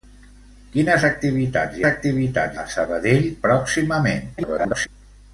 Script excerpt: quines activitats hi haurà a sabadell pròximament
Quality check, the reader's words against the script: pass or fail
fail